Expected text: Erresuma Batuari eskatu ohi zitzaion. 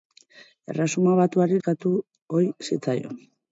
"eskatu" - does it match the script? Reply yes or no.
yes